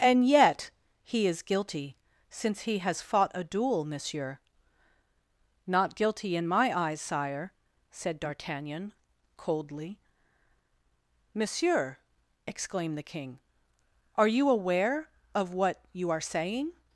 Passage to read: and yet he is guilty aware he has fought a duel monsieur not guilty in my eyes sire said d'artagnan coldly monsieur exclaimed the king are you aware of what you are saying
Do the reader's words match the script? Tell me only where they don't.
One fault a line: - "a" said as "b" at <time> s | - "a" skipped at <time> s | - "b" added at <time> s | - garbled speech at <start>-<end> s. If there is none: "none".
- "aware" said as "since" at 2.3 s